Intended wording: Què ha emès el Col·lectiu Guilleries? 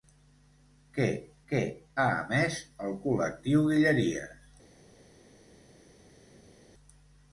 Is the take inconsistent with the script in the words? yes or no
yes